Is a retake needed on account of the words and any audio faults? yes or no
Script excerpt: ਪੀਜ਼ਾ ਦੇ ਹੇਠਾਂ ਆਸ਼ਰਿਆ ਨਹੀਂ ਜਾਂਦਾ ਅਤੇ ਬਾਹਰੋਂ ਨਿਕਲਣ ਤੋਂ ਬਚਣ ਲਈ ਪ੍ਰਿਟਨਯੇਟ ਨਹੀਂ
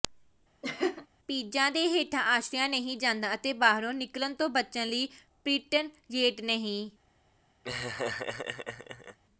yes